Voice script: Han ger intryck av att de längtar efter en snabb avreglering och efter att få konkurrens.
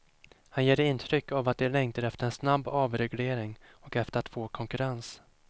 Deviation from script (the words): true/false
false